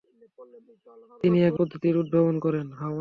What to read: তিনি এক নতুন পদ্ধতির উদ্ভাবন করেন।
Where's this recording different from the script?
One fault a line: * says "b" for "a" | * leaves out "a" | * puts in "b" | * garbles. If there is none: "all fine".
* leaves out "নতুন"